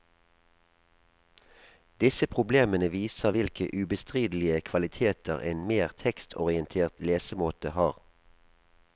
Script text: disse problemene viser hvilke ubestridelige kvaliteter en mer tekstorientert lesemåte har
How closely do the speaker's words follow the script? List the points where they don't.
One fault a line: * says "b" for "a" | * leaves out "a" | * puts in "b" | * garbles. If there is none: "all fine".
all fine